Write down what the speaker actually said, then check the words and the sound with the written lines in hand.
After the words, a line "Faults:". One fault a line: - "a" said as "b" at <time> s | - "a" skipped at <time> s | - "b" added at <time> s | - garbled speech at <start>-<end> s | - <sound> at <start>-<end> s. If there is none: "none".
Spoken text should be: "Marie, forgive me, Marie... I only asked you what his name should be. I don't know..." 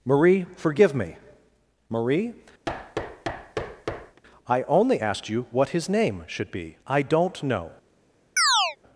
"Marie, forgive me, Marie... I only asked you what his name should be. I don't know..."
Faults:
- thud at 2.7-4.2 s
- chirp at 8.4-8.8 s